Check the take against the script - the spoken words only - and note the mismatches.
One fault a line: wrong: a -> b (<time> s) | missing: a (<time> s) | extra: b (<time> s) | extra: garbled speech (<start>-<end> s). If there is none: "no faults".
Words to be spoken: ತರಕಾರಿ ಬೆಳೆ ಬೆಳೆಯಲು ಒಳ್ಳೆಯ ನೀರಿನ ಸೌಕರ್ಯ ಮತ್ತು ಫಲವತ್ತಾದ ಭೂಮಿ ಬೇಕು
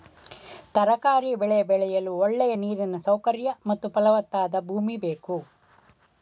no faults